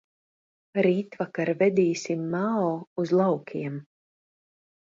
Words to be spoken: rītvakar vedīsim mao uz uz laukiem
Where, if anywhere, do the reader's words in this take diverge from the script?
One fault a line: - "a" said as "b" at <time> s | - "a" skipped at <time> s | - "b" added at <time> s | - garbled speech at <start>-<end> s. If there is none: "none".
- "uz" skipped at 3.1 s